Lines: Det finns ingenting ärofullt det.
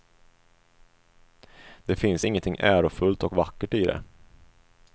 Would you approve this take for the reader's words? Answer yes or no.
no